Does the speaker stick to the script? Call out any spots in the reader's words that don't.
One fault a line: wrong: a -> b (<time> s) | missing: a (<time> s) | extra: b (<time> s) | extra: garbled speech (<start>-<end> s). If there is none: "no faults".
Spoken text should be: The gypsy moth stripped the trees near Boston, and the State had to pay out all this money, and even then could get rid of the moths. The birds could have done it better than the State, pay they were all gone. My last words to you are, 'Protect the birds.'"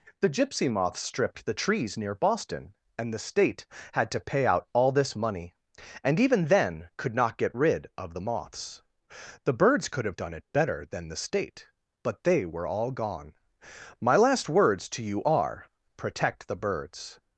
extra: not (7.1 s)
wrong: pay -> but (12.0 s)